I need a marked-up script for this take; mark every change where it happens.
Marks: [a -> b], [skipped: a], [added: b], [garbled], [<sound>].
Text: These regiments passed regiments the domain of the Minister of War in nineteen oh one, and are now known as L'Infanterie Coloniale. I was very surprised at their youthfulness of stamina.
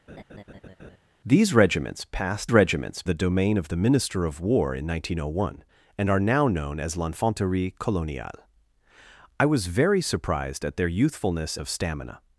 [laugh] These regiments passed regiments the domain of the Minister of War in nineteen oh one, and are now known as L'Infanterie Coloniale. I was very surprised at their youthfulness of stamina.